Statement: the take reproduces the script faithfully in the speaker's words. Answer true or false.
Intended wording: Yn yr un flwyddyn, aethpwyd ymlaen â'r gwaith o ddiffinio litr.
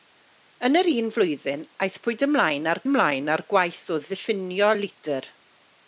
false